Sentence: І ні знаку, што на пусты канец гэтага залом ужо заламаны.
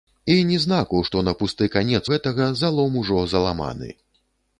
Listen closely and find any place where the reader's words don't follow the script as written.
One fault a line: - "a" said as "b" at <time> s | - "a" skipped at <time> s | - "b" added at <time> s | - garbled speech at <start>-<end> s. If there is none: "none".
none